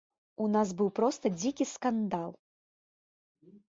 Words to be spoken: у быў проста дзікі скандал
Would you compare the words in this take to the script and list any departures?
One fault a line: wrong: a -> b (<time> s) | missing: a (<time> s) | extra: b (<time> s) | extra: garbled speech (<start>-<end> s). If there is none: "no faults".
extra: нас (0.6 s)